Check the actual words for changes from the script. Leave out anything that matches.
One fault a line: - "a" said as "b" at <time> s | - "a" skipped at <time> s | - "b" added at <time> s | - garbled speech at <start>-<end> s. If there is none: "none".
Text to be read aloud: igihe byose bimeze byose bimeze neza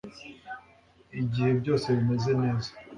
- "byose bimeze" skipped at 2.3 s